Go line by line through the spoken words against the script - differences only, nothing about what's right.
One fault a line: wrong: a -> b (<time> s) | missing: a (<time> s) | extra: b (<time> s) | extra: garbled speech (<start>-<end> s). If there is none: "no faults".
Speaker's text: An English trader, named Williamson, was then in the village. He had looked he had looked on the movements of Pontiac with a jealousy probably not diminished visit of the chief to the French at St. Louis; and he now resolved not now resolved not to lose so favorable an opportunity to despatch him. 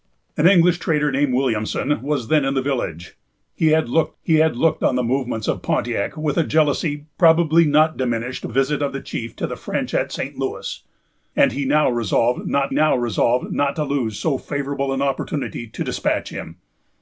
no faults